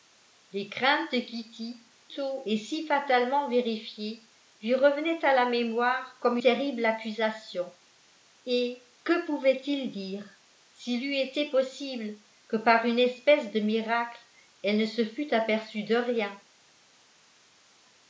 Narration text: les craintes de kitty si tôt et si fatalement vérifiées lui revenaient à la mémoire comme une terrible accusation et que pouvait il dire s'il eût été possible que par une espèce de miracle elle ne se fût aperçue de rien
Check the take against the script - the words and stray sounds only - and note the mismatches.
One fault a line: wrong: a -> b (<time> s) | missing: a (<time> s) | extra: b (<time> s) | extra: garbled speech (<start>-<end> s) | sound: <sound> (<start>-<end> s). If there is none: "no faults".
missing: si (1.8 s)
missing: une (6.4 s)